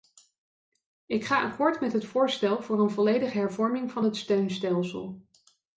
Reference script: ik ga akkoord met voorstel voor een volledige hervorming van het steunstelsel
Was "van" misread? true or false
false